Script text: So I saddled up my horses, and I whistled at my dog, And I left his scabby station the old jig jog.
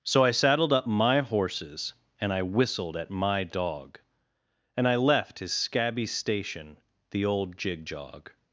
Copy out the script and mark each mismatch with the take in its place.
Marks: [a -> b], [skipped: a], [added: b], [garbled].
So I saddled up my horses, and I whistled at my dog, And I left his scabby station the old jig jog.